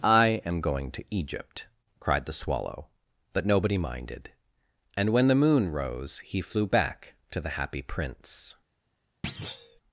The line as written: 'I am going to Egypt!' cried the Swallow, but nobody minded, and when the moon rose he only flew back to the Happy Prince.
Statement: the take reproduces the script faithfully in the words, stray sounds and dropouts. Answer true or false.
false